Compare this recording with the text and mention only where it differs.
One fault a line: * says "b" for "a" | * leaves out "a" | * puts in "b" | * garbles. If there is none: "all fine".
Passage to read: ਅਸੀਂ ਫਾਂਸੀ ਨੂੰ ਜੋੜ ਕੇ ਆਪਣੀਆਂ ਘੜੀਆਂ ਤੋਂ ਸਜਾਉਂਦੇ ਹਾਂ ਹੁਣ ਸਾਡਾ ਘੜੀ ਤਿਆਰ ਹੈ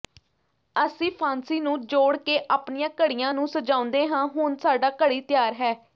* says "ਨੂੰ" for "ਤੋਂ"